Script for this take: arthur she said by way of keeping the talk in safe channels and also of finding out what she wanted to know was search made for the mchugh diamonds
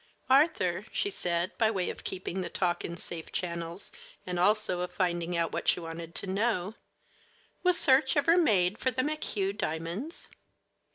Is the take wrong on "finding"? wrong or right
right